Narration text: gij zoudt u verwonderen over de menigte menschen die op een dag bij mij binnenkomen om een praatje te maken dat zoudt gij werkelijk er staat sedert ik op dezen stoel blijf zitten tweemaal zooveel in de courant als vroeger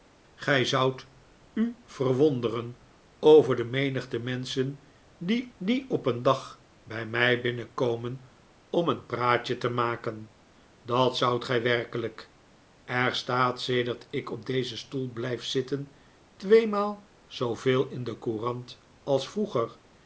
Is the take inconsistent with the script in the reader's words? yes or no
yes